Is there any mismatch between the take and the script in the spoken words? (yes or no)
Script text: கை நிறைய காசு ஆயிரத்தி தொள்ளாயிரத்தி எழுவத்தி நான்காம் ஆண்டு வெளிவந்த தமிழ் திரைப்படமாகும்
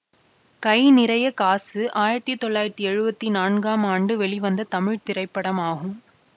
no